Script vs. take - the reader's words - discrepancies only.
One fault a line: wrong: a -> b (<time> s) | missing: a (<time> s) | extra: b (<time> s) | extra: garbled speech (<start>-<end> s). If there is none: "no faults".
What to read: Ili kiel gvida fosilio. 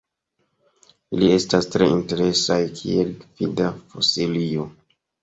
extra: estas tre interesaj (1.3 s)